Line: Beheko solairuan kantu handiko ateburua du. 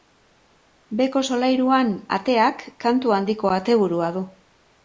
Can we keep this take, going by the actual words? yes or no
no